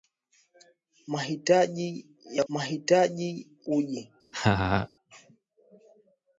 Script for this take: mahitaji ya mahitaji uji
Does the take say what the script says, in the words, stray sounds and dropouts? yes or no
no